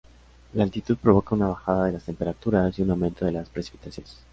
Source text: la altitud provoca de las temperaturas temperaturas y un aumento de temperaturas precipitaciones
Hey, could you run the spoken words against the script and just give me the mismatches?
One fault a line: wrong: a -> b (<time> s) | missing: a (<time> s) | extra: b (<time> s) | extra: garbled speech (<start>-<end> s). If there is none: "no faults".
extra: una bajada (1.4 s)
missing: temperaturas (2.8 s)
wrong: temperaturas -> las (3.3 s)